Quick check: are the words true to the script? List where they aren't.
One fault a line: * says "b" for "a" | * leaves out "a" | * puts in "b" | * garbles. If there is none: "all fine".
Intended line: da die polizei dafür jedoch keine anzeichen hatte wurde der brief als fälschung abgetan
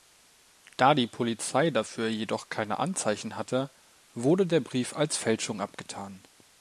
all fine